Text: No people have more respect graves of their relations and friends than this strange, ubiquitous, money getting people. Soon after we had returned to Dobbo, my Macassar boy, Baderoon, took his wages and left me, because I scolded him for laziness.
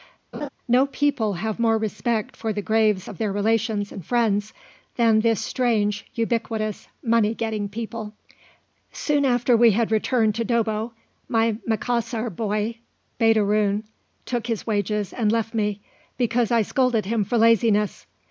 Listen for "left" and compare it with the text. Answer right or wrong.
right